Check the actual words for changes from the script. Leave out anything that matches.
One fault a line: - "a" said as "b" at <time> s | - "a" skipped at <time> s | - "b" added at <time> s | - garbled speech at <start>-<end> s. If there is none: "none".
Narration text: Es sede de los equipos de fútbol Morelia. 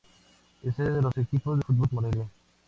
none